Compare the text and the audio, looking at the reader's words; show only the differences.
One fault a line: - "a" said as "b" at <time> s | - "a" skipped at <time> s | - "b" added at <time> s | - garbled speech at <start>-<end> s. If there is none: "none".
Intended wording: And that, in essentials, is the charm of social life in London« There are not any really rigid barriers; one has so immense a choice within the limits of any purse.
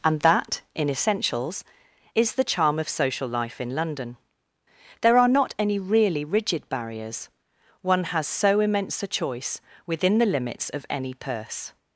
none